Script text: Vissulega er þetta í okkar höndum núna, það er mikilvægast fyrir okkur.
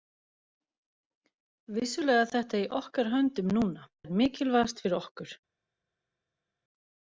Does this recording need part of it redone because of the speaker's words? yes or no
yes